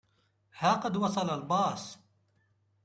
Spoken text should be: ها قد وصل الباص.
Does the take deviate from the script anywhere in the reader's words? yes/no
no